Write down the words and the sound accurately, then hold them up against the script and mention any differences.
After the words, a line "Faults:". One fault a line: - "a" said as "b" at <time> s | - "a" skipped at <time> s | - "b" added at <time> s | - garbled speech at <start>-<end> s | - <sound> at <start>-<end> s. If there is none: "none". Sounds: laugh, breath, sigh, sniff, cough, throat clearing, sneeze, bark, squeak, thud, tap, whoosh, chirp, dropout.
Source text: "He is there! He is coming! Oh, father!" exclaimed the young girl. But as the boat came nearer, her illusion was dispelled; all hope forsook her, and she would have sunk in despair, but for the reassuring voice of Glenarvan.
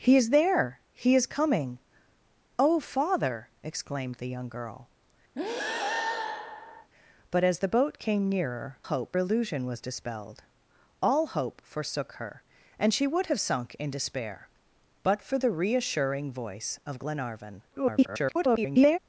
"He is there! He is coming! Oh, father!" exclaimed the young girl. But as the boat came nearer, hope illusion was dispelled; all hope forsook her, and she would have sunk in despair, but for the reassuring voice of Glenarvan. [garbled]
Faults:
- breath at 5.4-6.9 s
- "her" said as "hope" at 8.8 s
- garbled speech at 17.7-19.0 s